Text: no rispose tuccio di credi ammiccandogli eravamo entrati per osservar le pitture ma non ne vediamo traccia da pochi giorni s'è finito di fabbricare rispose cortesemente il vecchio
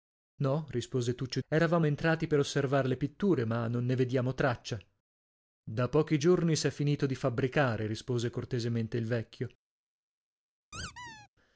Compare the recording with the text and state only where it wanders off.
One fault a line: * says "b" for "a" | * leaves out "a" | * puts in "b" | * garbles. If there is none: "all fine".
* leaves out "di credi ammiccandogli"